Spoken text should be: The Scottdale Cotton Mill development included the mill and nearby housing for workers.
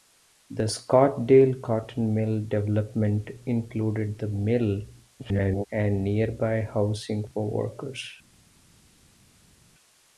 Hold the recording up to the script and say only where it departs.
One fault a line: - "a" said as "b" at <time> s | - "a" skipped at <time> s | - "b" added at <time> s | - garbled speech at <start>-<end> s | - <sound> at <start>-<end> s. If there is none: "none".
- garbled speech at 5.2-5.7 s